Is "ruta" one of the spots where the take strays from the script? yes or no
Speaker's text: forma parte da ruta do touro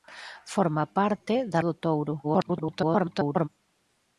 yes